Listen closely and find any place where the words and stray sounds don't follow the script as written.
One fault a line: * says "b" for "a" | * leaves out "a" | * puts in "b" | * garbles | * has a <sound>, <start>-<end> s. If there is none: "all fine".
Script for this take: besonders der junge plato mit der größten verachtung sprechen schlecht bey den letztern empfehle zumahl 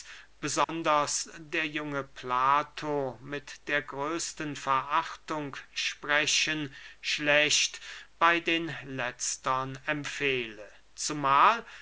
* has a dropout, 0.6-0.7 s